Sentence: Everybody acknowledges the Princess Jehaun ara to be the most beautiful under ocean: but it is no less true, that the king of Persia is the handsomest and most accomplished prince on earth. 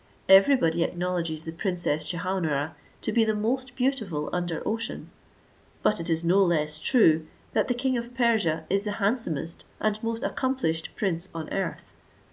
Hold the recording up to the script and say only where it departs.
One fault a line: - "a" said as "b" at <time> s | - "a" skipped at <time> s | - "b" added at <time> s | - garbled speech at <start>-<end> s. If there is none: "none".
none